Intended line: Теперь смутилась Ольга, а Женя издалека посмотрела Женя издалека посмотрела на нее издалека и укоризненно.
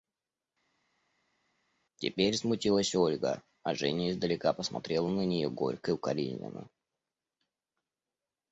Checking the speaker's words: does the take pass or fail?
fail